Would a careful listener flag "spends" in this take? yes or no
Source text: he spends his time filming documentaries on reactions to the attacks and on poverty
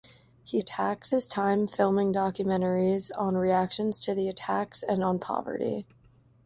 yes